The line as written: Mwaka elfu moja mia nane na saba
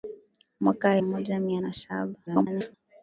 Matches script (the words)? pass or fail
fail